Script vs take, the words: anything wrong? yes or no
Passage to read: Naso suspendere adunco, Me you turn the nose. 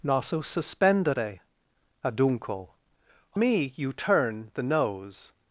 no